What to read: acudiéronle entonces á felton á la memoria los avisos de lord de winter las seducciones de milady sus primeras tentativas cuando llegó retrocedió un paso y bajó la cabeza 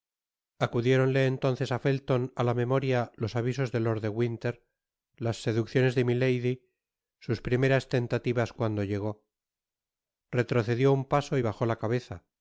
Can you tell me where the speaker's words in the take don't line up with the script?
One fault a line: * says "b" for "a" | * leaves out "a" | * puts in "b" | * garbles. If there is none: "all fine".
all fine